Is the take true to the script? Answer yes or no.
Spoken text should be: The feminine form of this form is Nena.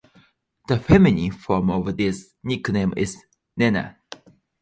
no